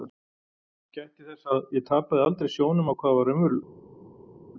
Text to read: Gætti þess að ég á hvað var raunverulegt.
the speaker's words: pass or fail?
fail